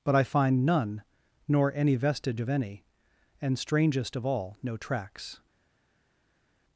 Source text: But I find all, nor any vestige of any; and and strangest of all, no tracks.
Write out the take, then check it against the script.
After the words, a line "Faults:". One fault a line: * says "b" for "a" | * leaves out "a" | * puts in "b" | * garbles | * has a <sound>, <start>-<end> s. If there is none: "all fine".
But I find none, nor any vestige of any; and strangest of all, no tracks.
Faults:
* says "none" for "all"
* leaves out "and"